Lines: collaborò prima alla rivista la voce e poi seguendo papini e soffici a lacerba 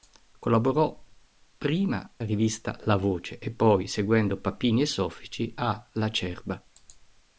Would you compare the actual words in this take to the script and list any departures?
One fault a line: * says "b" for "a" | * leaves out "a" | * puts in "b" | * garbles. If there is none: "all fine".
* leaves out "alla"